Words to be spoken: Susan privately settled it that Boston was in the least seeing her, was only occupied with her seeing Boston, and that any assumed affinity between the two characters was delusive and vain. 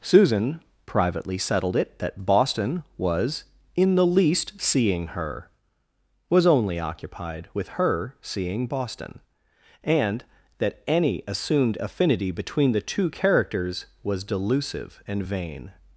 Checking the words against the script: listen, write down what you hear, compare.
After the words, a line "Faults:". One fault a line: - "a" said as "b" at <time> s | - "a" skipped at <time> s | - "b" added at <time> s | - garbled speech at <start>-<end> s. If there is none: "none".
Susan privately settled it that Boston was in the least seeing her, was only occupied with her seeing Boston, and that any assumed affinity between the two characters was delusive and vain.
Faults:
none